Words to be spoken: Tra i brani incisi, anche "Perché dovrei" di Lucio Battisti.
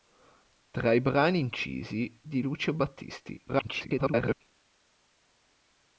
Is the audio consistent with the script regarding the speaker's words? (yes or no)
no